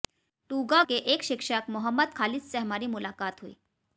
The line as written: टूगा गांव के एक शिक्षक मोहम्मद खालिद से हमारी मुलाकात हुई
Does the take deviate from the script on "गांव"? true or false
true